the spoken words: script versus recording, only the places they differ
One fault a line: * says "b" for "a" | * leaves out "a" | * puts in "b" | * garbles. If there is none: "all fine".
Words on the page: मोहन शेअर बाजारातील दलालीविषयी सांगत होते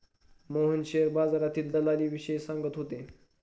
all fine